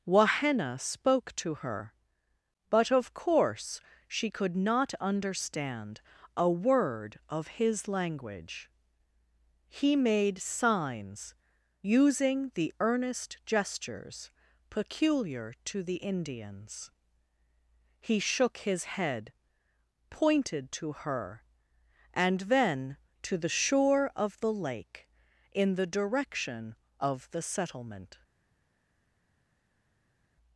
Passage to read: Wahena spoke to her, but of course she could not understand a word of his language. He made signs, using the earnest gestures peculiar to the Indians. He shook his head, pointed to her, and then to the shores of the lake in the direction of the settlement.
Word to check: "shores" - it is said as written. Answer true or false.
false